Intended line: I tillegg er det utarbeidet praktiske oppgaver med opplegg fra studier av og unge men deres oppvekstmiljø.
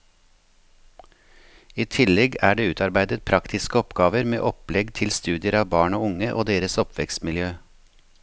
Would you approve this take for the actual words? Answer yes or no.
no